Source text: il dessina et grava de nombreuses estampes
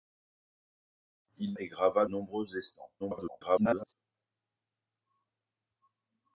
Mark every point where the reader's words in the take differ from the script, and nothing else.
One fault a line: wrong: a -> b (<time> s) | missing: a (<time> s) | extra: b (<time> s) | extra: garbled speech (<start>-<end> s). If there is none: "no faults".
missing: dessina (1.5 s)
missing: de (2.0 s)
extra: garbled speech (3.0-3.9 s)